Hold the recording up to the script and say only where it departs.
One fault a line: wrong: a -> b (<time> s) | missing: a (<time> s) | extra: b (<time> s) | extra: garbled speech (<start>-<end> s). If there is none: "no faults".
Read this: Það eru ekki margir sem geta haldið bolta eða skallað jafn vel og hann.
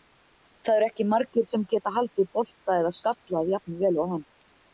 no faults